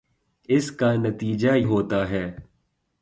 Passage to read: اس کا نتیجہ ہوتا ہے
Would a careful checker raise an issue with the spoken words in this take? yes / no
no